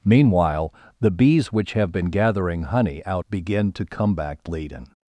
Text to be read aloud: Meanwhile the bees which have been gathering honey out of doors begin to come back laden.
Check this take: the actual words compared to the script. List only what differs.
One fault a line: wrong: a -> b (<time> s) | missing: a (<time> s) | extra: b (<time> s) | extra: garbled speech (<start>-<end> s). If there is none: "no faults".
missing: of doors (3.2 s)